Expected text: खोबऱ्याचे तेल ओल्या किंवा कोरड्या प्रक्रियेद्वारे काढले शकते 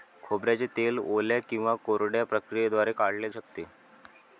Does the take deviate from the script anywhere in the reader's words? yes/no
no